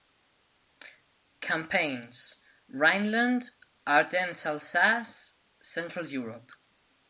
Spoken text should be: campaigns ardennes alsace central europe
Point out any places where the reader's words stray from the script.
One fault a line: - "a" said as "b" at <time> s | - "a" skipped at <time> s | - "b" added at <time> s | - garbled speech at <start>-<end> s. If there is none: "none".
- "rhineland" added at 2.7 s